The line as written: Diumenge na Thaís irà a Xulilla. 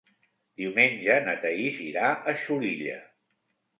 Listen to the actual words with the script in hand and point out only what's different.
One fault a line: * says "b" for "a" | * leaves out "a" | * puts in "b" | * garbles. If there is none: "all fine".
all fine